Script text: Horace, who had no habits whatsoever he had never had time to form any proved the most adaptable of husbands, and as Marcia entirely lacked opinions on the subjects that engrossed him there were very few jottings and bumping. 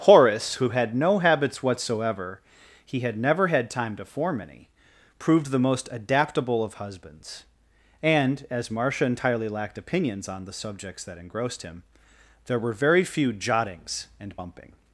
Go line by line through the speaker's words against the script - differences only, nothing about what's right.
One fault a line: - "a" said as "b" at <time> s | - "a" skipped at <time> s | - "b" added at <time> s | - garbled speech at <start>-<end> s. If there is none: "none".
none